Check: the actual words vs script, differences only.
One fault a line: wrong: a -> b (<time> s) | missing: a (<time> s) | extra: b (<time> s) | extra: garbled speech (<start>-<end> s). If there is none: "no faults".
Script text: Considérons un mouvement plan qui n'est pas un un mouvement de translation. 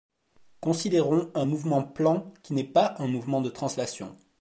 missing: un (3.1 s)